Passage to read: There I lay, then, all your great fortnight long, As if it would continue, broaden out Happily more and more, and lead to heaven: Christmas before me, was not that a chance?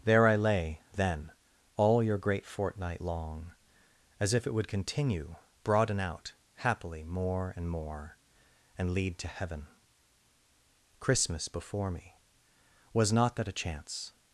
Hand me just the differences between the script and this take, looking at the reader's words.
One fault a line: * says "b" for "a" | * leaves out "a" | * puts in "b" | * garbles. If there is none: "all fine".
all fine